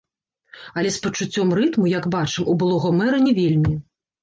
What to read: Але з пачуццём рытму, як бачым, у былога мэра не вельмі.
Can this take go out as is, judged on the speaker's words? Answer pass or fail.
pass